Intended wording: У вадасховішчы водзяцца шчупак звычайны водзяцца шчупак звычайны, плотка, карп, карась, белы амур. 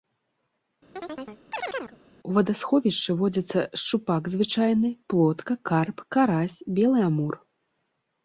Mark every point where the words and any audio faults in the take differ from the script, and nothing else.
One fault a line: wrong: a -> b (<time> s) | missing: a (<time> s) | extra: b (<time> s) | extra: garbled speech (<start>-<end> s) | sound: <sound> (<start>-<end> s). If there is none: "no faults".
sound: chirp (1.0-2.0 s)
missing: водзяцца шчупак звычайны (4.9 s)